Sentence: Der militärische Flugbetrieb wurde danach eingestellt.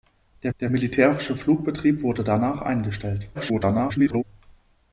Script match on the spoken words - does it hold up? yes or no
no